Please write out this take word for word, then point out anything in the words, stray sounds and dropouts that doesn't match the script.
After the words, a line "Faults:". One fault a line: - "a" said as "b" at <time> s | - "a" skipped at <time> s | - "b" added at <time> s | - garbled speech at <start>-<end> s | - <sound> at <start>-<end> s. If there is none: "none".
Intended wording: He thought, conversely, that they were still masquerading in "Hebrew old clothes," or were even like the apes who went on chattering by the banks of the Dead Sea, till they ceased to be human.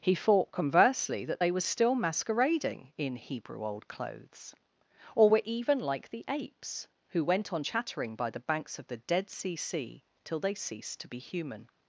He thought, conversely, that they were still masquerading in "Hebrew old clothes," or were even like the apes who went on chattering by the banks of the Dead Sea Sea, till they ceased to be human.
Faults:
- "Sea" added at 9.5 s